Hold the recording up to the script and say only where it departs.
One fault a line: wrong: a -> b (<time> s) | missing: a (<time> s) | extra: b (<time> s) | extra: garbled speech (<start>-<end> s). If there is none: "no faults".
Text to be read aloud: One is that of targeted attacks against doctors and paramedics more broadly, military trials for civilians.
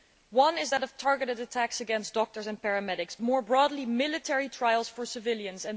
no faults